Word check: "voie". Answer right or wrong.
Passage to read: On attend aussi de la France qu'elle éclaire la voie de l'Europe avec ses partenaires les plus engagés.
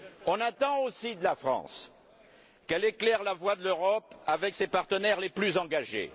right